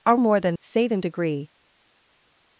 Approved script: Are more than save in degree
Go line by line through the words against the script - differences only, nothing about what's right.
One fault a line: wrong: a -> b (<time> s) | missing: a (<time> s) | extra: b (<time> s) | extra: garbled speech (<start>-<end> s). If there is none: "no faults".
no faults